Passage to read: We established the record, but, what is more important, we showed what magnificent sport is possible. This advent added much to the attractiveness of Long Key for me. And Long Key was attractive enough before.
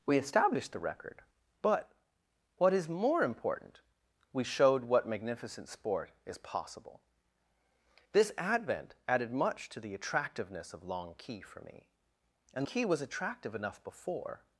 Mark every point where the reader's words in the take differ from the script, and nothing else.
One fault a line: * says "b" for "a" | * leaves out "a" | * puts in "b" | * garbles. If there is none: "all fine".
* leaves out "Long"